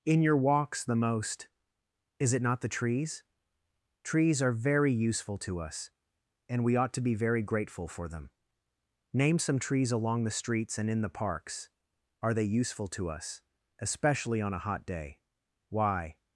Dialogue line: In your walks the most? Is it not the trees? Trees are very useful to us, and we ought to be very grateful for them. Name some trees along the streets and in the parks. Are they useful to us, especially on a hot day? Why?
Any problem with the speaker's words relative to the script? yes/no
no